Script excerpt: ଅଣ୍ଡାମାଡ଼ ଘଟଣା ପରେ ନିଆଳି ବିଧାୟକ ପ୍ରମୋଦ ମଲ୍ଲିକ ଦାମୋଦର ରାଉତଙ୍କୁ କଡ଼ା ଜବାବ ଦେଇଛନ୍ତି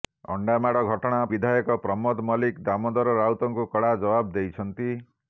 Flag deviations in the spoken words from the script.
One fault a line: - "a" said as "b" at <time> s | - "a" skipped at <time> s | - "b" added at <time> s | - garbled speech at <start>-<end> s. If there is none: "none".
- "ପରେ ନିଆଳି" skipped at 1.2 s